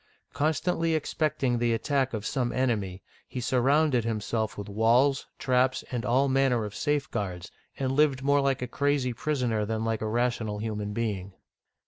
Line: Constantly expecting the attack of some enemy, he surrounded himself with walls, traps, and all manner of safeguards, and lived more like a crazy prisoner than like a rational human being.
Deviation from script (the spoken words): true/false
false